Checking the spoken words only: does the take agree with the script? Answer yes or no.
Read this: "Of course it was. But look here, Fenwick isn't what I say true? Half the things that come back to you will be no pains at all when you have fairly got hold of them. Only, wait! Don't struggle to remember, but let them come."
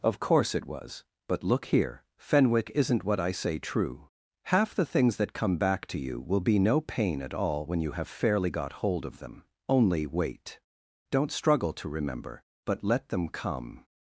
no